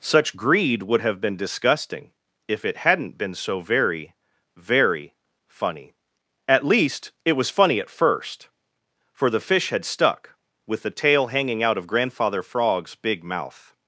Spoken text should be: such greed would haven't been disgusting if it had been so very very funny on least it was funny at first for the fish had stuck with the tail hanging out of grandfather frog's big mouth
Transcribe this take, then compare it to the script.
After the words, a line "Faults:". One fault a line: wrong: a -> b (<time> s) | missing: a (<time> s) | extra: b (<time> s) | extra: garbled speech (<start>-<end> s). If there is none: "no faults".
such greed would have been disgusting if it hadn't been so very very funny at least it was funny at first for the fish had stuck with the tail hanging out of grandfather frog's big mouth
Faults:
wrong: haven't -> have (1.0 s)
wrong: had -> hadn't (2.8 s)
wrong: on -> at (6.5 s)